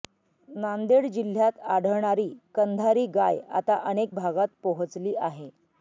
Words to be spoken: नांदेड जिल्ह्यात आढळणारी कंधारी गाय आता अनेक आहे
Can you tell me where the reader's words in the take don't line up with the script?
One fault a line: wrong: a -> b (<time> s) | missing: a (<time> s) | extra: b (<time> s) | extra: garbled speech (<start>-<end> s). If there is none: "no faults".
extra: भागात पोहचली (4.1 s)